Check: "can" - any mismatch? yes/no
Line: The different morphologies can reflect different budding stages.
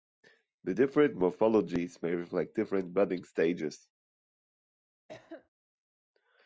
yes